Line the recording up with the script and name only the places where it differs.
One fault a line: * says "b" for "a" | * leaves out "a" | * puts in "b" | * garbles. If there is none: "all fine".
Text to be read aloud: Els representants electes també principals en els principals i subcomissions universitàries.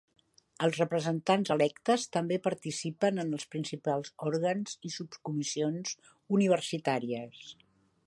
* says "participen" for "principals"
* puts in "òrgans"